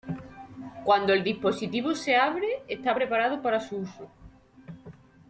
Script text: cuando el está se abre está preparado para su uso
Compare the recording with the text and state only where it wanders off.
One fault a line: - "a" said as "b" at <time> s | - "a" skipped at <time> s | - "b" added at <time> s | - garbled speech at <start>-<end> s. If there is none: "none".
- "está" said as "dispositivo" at 1.2 s